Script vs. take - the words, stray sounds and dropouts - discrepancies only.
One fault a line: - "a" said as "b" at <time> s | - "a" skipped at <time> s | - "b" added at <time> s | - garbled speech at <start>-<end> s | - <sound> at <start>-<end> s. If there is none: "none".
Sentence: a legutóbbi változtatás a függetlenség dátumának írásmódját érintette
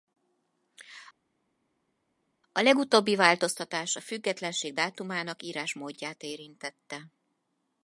none